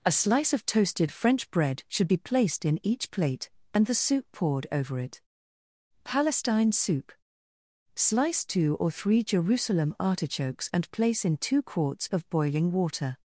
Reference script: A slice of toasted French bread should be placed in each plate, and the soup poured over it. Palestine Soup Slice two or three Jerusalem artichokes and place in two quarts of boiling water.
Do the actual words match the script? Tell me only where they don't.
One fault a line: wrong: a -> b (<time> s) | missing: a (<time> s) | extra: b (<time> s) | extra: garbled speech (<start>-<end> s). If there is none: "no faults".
no faults